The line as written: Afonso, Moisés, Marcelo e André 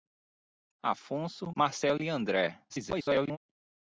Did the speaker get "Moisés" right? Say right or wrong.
wrong